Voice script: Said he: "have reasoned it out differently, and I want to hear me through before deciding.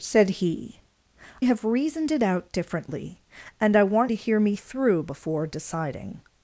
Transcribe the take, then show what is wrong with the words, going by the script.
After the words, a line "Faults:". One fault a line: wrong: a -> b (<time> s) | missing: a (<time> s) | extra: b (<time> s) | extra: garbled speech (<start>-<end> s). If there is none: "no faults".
Said he: "have reasoned it out differently, and I want to hear me through before deciding.
Faults:
no faults